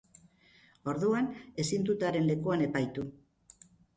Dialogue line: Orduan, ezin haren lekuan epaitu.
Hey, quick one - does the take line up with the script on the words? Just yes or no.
no